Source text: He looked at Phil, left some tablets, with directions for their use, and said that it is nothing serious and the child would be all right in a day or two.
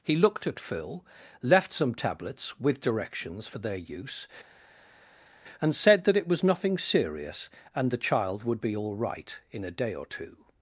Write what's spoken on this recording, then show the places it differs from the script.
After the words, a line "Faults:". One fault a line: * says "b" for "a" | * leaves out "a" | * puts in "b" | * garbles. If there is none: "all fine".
He looked at Phil, left some tablets, with directions for their use, and said that it was nothing serious and the child would be all right in a day or two.
Faults:
* says "was" for "is"